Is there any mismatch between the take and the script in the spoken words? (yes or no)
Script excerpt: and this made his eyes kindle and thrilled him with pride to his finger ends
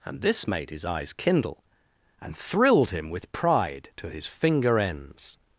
no